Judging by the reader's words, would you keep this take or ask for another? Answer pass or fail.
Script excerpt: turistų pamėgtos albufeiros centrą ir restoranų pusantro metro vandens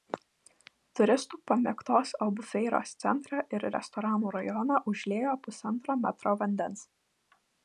fail